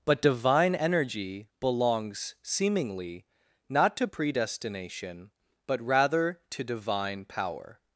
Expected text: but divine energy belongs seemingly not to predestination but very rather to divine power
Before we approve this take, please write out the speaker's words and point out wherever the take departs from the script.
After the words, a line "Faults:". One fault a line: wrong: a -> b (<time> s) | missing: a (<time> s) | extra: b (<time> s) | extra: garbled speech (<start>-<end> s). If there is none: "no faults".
but divine energy belongs seemingly not to predestination but rather to divine power
Faults:
missing: very (5.8 s)